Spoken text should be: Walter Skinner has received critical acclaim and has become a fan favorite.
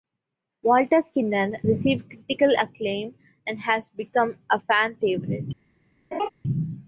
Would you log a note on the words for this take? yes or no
yes